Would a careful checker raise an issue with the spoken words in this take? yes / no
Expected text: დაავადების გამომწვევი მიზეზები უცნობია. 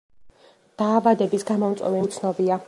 yes